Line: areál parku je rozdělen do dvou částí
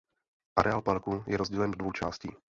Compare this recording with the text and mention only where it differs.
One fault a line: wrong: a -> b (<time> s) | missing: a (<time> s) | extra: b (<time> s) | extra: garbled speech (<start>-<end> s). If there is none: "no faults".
no faults